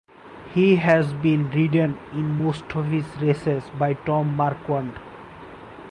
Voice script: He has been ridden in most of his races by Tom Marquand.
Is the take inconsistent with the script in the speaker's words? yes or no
no